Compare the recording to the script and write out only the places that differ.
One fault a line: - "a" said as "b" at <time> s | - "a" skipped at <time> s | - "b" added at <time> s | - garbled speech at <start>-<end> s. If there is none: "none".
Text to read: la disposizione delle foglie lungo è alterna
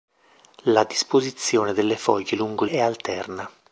none